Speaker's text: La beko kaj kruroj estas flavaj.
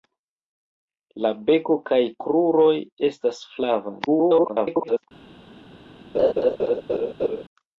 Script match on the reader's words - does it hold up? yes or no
no